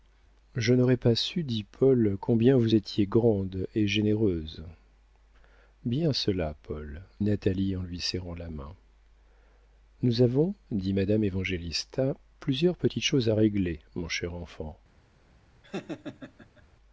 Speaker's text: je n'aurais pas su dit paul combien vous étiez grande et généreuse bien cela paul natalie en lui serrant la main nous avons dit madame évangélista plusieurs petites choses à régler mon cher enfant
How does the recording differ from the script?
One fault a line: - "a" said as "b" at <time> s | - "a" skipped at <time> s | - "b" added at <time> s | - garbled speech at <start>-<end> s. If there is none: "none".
none